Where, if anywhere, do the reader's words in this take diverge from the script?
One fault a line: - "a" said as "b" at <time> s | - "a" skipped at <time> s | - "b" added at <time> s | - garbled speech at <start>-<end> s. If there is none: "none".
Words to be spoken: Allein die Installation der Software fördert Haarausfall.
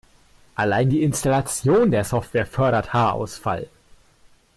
none